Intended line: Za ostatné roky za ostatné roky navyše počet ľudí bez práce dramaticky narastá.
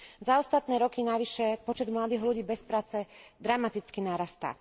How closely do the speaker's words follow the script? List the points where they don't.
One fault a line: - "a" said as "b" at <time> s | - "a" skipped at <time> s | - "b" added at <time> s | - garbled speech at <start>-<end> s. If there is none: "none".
- "za ostatné roky" skipped at 1.0 s
- "mladých" added at 1.9 s